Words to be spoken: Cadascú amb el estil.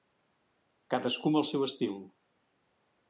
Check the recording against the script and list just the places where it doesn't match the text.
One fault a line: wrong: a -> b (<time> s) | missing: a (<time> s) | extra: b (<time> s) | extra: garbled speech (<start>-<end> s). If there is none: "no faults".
extra: seu (1.5 s)